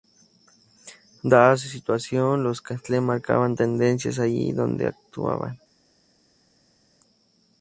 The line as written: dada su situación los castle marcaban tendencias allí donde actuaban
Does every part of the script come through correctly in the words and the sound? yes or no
yes